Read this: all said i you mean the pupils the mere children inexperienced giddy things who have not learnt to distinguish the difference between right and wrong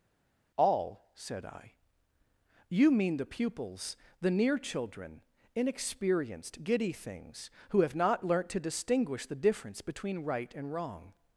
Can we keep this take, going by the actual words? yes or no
no